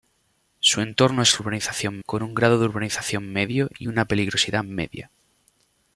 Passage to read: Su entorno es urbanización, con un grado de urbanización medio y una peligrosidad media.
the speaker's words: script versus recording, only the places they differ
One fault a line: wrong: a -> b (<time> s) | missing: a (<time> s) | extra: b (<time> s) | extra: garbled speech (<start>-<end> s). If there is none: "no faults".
no faults